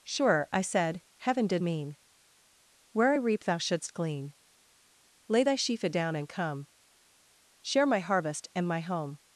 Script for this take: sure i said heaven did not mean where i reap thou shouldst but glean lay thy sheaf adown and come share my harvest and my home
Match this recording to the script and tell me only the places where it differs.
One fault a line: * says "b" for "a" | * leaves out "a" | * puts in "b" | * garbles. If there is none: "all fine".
* leaves out "not"
* leaves out "but"